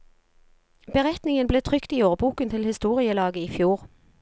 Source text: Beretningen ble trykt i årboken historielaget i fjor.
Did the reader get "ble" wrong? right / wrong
right